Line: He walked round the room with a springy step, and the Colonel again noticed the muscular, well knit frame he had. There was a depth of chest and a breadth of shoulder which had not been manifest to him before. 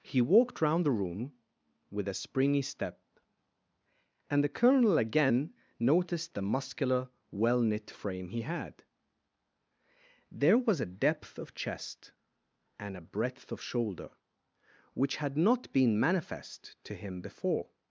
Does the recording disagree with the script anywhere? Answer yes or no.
no